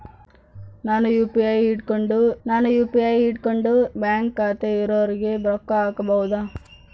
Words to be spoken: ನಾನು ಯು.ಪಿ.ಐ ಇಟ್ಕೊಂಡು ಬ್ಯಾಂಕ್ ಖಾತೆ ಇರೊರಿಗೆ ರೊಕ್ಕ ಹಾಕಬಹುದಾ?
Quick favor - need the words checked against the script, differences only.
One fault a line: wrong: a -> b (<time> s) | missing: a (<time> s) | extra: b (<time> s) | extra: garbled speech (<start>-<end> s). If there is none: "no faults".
extra: ನಾನು ಯು.ಪಿ.ಐ ಇಟ್ಕೊಂಡು (2.4 s)